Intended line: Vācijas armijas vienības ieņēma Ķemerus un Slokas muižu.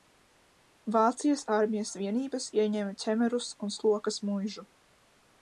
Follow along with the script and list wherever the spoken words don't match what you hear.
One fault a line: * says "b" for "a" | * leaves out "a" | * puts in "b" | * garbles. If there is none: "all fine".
all fine